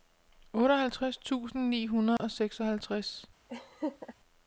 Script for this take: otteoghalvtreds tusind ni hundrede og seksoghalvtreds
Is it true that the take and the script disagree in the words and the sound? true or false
true